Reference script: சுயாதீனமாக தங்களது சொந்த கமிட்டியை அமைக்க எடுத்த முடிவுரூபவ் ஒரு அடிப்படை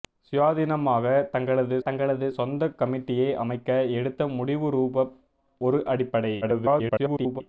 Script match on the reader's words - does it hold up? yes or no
no